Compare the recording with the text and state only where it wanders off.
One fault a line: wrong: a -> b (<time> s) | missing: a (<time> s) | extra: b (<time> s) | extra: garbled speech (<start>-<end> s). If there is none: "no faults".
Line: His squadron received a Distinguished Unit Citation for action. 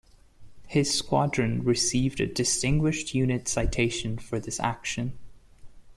extra: this (4.4 s)